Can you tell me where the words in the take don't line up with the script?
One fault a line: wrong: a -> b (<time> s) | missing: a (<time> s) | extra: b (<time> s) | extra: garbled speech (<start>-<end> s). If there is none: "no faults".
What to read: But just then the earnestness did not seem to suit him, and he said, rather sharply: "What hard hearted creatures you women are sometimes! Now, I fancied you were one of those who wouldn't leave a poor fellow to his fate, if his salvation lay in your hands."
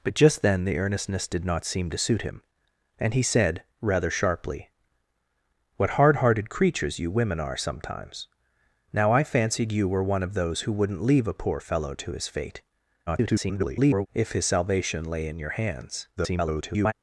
extra: garbled speech (13.1-14.1 s)
extra: garbled speech (16.2-16.9 s)